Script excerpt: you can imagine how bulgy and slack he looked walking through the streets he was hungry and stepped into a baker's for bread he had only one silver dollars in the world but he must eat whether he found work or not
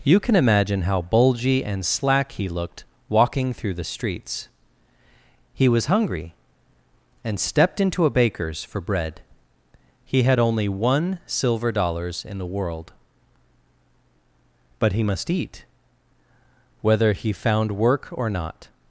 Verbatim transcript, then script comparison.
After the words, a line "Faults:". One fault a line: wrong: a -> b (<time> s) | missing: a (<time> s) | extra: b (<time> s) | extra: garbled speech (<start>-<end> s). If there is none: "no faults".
you can imagine how bulgy and slack he looked walking through the streets he was hungry and stepped into a baker's for bread he had only one silver dollars in the world but he must eat whether he found work or not
Faults:
no faults